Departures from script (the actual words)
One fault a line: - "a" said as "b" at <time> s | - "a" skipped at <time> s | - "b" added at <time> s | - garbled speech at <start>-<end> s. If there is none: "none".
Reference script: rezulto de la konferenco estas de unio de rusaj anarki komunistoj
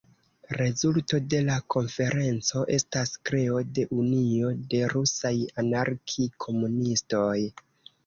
- "kreo" added at 3.3 s